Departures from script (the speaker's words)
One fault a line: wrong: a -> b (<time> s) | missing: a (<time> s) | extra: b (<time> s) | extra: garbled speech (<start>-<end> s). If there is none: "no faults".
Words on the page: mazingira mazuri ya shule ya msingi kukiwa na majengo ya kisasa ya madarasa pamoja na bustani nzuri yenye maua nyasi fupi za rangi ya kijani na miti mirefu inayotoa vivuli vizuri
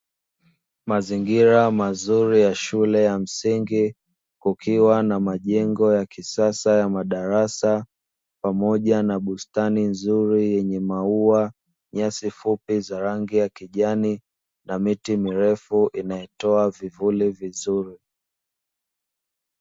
no faults